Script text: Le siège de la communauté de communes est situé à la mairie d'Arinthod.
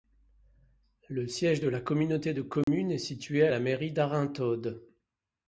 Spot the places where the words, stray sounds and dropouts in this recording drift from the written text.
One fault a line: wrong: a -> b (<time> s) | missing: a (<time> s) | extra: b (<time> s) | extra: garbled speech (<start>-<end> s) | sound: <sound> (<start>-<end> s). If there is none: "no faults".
sound: dropout (2.6-2.7 s)